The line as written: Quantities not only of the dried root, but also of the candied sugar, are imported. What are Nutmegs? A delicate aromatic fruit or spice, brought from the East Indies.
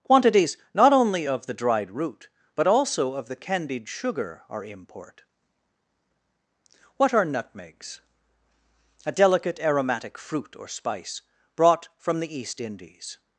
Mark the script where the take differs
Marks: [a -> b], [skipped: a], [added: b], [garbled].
Quantities not only of the dried root, but also of the candied sugar, are [imported. -> import] What are Nutmegs? A delicate aromatic fruit or spice, brought from the East Indies.